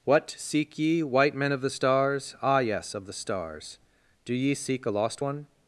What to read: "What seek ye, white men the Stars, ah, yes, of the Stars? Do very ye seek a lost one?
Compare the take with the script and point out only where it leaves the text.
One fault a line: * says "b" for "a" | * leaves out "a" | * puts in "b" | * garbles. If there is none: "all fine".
* puts in "of"
* leaves out "very"